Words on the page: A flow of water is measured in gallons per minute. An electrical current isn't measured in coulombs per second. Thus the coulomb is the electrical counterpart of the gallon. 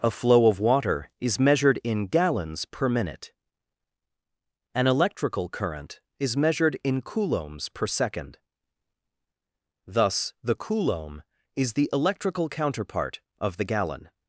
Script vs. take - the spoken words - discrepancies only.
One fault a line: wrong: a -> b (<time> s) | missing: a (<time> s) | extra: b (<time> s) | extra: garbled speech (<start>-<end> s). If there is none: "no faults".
wrong: isn't -> is (6.2 s)